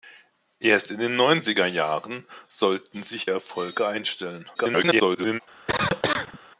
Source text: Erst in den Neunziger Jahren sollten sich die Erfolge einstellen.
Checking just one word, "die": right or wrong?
wrong